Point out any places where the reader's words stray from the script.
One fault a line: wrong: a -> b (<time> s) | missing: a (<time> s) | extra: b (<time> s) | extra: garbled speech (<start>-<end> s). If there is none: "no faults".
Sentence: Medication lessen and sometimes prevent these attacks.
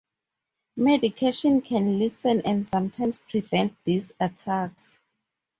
extra: can (1.6 s)